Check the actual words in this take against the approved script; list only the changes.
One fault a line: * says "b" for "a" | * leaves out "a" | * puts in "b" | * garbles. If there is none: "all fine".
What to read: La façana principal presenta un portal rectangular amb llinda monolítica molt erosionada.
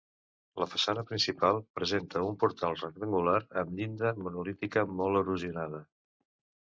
all fine